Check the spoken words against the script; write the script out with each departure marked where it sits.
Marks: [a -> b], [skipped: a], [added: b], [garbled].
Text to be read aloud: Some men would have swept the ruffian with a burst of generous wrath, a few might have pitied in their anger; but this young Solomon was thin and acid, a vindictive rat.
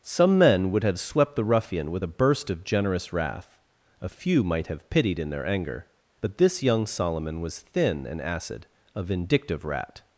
Some men would have swept the ruffian with a burst of generous wrath, a few might have pitied in their anger; but this young Solomon was thin and acid, a vindictive rat.